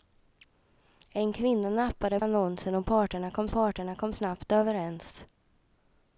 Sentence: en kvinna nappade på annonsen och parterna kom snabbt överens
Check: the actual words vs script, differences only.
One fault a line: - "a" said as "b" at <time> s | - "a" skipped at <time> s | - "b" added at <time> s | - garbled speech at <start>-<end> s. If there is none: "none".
- "på" skipped at 2.2 s
- "parterna kom" added at 3.5 s